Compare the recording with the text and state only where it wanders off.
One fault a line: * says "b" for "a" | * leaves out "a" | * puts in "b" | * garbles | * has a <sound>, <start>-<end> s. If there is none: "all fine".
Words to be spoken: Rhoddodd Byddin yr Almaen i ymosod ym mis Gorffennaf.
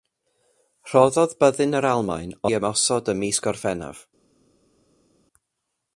all fine